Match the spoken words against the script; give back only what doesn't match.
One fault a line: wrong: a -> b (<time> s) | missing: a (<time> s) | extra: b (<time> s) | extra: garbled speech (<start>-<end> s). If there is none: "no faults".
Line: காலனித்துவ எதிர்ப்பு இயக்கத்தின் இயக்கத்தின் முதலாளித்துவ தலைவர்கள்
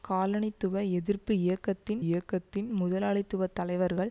no faults